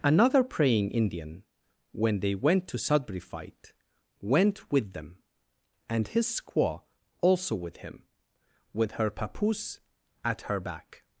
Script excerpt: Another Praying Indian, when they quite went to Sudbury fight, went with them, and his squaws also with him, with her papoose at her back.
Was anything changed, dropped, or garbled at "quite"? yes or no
yes